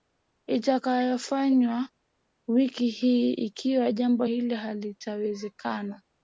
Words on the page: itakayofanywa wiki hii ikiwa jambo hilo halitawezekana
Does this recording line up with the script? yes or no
yes